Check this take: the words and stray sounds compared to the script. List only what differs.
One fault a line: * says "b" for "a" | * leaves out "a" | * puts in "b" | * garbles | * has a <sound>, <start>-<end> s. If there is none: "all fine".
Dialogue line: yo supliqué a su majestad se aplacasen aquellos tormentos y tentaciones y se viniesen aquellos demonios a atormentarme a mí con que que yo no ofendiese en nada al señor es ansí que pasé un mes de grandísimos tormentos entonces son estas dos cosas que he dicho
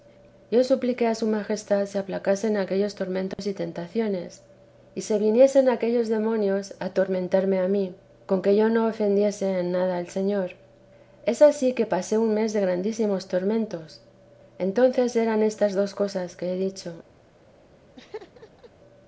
* has a dropout, 3.3-3.4 s
* leaves out "que"
* says "eran" for "son"
* has a laugh, 18.0-18.7 s